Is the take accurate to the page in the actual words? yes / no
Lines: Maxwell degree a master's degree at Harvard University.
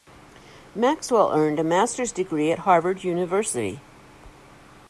no